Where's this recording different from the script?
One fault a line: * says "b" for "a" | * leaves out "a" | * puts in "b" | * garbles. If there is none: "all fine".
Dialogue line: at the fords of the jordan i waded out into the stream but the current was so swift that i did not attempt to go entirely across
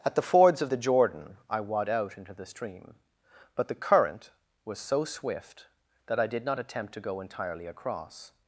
* says "wad" for "waded"